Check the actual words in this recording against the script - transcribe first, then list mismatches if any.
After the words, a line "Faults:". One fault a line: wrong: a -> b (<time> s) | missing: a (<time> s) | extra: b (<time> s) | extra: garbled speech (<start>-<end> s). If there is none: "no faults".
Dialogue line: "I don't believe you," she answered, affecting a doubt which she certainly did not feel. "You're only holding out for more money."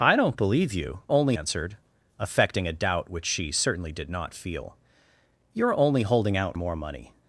"I don't believe you," only answered, affecting a doubt which she certainly did not feel. "You're only holding out more money."
Faults:
wrong: she -> only (1.1 s)
missing: for (6.6 s)